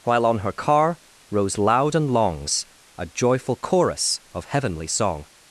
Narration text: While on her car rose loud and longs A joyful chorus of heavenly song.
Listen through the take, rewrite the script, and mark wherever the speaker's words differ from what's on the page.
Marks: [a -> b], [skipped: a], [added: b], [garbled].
While on her car rose loud and longs A joyful chorus of heavenly song.